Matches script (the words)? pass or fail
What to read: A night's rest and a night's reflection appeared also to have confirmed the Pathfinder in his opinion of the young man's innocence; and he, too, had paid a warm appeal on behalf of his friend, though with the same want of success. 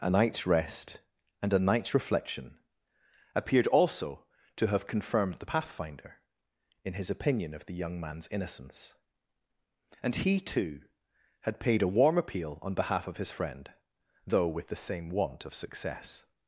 pass